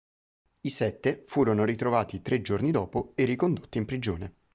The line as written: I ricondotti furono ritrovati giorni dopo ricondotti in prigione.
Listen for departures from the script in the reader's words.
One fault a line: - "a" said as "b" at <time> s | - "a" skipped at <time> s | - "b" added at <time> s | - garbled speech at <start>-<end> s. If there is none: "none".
- "ricondotti" said as "sette" at 0.7 s
- "tre" added at 2.2 s
- "e" added at 3.2 s